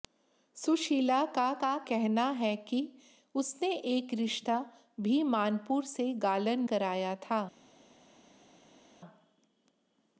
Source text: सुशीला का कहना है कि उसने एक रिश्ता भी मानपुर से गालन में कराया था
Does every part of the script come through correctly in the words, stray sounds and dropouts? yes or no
no